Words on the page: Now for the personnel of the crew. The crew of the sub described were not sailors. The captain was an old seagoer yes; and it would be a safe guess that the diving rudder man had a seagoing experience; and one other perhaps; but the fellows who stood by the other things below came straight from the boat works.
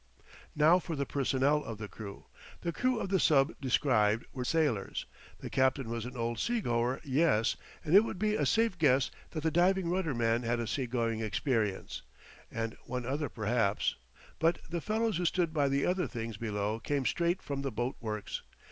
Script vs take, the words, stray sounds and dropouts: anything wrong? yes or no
yes